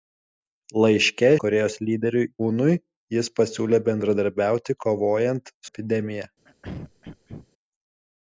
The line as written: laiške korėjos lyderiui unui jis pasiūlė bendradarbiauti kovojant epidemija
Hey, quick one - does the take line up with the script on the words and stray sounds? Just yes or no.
no